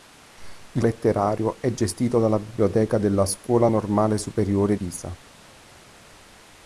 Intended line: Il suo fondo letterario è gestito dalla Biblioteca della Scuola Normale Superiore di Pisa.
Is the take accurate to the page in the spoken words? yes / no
no